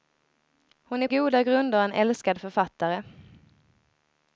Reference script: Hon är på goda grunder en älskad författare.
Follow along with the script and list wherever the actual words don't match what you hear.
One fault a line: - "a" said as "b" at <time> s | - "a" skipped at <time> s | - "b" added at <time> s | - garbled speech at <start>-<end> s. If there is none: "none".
- "på" skipped at 1.1 s